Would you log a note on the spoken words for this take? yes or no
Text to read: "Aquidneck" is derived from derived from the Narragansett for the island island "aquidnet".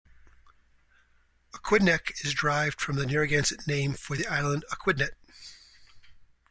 yes